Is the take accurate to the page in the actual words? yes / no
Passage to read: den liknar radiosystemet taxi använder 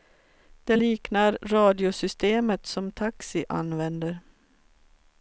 no